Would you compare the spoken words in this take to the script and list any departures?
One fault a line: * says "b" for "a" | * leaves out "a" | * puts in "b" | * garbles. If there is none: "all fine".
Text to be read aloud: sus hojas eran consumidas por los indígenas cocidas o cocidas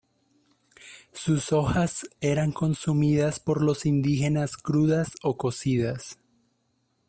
* says "crudas" for "cocidas"